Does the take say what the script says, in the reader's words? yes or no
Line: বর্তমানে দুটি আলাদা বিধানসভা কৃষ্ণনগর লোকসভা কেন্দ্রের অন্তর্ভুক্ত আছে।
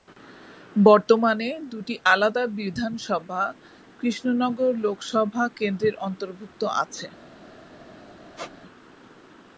yes